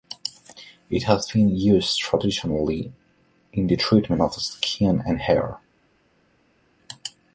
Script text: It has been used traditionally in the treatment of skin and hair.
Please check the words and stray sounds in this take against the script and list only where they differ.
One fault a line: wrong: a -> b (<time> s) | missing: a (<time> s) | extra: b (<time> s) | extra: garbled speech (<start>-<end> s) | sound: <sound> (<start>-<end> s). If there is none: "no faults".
no faults